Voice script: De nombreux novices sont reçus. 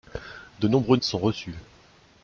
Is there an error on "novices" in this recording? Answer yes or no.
yes